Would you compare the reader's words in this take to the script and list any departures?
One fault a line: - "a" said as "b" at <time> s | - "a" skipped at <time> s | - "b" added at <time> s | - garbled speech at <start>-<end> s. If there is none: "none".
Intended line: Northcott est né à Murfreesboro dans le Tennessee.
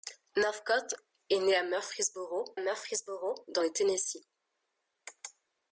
- "Murfreesboro" added at 2.6 s